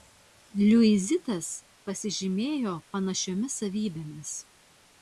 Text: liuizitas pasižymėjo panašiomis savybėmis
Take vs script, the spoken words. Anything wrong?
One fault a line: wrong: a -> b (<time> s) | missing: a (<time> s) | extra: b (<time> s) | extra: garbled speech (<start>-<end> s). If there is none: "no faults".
no faults